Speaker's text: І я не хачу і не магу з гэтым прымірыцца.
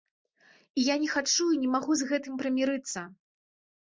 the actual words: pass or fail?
pass